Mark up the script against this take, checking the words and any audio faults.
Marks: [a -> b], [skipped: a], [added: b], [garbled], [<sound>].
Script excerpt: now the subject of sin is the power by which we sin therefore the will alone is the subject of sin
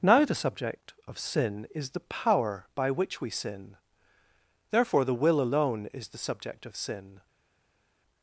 now the subject of sin is the power by which we sin therefore the will alone is the subject of sin